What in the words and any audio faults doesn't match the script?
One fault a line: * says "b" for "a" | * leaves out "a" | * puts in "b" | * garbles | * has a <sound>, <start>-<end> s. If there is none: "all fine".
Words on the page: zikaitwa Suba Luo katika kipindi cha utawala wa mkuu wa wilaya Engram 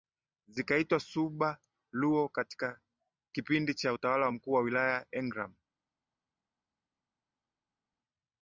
all fine